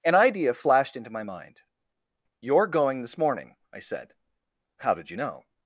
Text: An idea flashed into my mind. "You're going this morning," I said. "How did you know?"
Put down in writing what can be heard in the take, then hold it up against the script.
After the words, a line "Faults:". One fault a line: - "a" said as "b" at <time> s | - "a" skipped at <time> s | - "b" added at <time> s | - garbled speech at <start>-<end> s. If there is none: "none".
An idea flashed into my mind. "You're going this morning," I said. "How did you know?"
Faults:
none